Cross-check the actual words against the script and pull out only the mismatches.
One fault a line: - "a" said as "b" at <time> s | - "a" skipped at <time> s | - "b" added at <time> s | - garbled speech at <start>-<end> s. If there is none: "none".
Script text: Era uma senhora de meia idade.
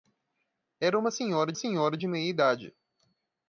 - "senhora" added at 1.5 s